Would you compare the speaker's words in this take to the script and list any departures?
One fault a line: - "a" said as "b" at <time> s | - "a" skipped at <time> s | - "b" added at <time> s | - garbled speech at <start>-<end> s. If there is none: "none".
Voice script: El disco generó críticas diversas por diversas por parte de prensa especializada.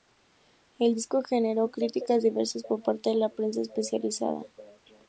- "diversas por" skipped at 2.8 s
- "la" added at 3.2 s